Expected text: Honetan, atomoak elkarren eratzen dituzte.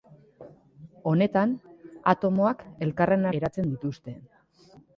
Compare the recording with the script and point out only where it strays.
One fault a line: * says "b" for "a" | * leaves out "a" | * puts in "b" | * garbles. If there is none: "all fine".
all fine